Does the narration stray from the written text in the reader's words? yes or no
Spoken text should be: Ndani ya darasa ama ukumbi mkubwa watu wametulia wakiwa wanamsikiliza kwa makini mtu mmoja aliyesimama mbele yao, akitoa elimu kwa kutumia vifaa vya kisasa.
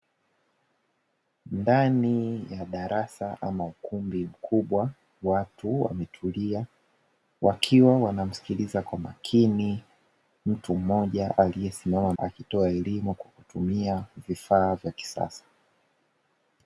yes